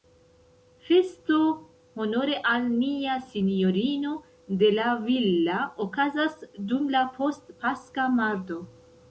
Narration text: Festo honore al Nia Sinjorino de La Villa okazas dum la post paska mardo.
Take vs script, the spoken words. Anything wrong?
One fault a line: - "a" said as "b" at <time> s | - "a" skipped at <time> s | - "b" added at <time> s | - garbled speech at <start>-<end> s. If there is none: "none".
none